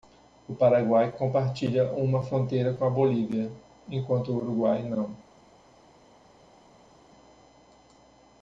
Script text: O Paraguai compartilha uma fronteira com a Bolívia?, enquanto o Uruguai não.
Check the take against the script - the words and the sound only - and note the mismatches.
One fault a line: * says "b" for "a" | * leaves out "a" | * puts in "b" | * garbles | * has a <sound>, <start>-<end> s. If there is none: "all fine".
all fine